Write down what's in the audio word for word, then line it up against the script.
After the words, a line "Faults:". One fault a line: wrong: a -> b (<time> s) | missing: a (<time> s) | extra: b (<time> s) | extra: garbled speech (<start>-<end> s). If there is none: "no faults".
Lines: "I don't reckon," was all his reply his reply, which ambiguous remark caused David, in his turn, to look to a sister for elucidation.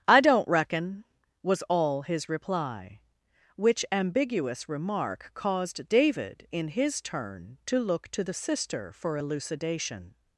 "I don't reckon," was all his reply, which ambiguous remark caused David, in his turn, to look to the sister for elucidation.
Faults:
missing: his reply (3.0 s)
wrong: a -> the (8.2 s)